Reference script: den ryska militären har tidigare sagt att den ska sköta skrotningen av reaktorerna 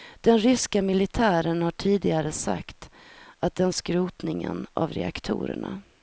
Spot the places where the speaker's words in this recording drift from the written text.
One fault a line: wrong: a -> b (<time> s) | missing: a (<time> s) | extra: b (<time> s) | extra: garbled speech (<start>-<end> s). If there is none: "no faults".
missing: ska sköta (3.7 s)